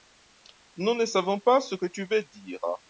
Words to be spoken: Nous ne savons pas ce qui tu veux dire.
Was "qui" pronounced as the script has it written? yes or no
no